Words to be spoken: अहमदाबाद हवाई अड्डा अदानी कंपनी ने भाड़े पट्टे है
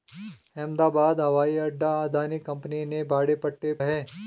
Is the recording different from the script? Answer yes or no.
no